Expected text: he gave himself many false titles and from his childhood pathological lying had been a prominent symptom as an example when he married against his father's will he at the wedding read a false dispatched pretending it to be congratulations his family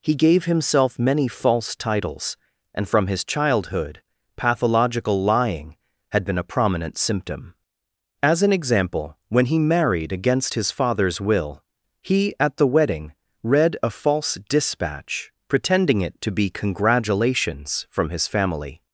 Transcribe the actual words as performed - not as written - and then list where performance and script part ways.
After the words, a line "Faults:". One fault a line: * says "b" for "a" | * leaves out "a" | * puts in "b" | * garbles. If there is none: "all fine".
he gave himself many false titles and from his childhood pathological lying had been a prominent symptom as an example when he married against his father's will he at the wedding read a false dispatch pretending it to be congratulations from his family
Faults:
* says "dispatch" for "dispatched"
* puts in "from"